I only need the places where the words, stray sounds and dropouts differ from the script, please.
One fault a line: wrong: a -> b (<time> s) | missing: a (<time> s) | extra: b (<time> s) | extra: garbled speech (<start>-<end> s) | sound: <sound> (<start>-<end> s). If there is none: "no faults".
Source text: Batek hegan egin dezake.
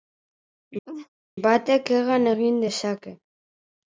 sound: laugh (0.9-1.1 s)